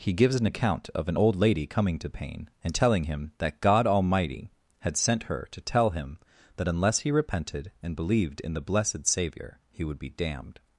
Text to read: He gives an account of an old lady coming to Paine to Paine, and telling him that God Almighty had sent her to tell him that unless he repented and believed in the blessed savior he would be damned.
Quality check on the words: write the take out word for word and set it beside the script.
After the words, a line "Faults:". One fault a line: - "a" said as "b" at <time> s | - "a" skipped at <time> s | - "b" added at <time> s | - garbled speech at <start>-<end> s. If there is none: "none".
He gives an account of an old lady coming to Paine, and telling him that God Almighty had sent her to tell him that unless he repented and believed in the blessed savior he would be damned.
Faults:
- "to Paine" skipped at 2.5 s